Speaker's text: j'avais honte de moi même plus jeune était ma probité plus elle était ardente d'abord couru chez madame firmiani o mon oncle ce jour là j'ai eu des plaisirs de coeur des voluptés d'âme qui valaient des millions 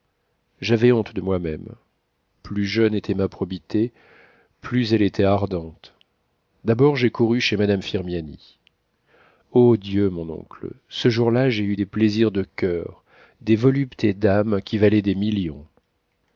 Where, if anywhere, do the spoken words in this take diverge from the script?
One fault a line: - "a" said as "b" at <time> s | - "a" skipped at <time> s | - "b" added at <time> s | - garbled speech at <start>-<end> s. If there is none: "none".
- "j'ai" added at 7.0 s
- "dieu" added at 9.8 s